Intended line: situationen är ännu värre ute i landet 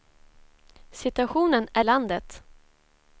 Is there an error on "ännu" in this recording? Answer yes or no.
yes